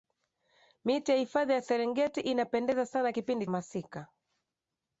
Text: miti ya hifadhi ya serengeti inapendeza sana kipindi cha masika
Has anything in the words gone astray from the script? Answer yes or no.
yes